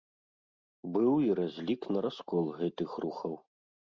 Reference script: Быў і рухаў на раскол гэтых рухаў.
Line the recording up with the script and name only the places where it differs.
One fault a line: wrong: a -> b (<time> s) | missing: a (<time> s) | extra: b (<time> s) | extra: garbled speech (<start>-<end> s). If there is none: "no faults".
wrong: рухаў -> разлік (1.4 s)